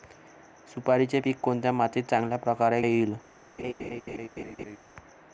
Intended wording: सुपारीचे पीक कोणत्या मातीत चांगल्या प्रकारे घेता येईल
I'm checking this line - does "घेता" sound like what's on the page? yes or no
no